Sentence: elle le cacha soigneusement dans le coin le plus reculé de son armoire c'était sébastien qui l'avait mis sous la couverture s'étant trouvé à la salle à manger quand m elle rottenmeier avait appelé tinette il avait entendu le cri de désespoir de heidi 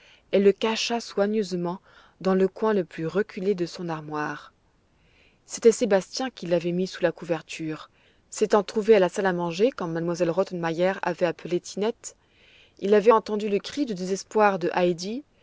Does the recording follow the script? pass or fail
pass